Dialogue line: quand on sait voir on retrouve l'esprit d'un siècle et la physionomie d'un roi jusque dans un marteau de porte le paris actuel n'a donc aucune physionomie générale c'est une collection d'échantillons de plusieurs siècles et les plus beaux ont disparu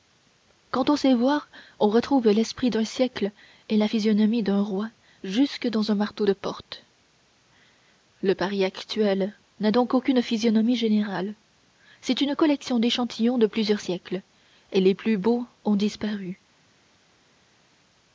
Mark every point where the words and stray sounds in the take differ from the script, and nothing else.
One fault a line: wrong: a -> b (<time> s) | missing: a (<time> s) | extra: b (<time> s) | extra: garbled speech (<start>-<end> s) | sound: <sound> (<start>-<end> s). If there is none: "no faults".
no faults